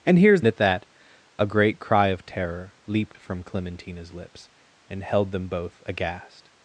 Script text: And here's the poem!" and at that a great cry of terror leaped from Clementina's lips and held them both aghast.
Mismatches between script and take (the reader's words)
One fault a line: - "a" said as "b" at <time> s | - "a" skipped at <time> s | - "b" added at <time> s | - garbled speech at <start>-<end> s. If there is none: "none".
- "the poem and" skipped at 0.4 s